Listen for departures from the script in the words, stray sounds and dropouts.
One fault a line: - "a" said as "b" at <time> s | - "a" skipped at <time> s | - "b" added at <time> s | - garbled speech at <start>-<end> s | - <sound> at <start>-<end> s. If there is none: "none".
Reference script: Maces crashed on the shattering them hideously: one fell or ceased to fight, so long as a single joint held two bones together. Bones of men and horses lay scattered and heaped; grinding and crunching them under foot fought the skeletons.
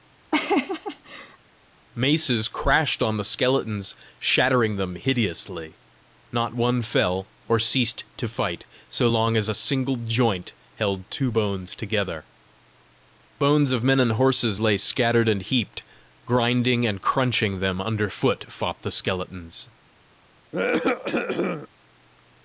- laugh at 0.3-1.4 s
- "skeletons" added at 3.2 s
- "not" added at 6.3 s
- cough at 20.5-21.7 s